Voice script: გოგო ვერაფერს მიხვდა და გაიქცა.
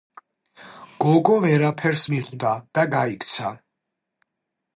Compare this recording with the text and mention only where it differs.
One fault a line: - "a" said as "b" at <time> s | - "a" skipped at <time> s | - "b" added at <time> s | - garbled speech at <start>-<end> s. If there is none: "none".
none